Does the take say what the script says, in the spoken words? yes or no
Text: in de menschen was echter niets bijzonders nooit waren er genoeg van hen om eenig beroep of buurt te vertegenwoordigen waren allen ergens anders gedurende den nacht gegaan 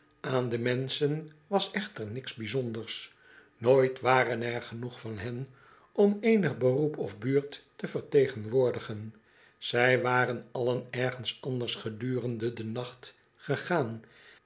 no